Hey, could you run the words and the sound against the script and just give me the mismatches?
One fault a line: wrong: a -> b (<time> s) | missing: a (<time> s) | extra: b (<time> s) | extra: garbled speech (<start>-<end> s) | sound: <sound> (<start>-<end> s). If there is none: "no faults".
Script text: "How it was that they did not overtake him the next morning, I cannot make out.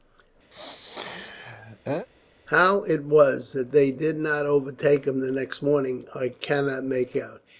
sound: sneeze (0.5-2.1 s)